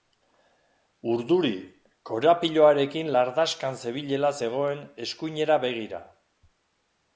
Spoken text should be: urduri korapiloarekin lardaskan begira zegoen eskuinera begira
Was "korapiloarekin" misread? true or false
false